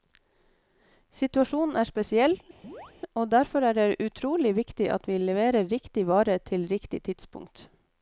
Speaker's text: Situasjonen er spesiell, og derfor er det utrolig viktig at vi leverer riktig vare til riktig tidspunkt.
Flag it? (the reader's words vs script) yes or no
no